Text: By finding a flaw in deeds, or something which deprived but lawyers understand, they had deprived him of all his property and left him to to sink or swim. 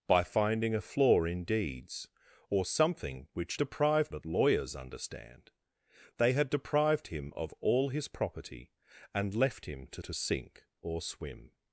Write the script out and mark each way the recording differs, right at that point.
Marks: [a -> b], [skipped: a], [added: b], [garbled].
By finding a flaw in deeds, or something which deprived but lawyers understand, they had deprived him of all his property and left him to to sink or swim.